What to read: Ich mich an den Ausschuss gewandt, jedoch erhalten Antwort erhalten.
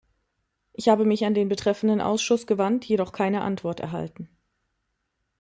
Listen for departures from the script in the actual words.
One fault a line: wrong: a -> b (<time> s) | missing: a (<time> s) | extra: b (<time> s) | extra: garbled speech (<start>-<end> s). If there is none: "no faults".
extra: habe (0.9 s)
extra: betreffenden (1.5 s)
wrong: erhalten -> keine (3.1 s)